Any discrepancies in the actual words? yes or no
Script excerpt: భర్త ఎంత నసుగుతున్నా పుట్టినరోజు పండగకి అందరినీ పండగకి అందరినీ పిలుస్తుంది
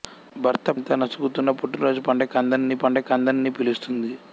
no